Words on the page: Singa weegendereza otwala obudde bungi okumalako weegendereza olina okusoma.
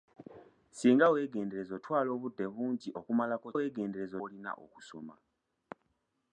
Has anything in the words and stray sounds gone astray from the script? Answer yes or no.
no